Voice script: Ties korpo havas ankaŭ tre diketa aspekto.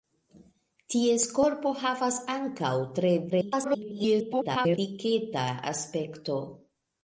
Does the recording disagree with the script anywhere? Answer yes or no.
yes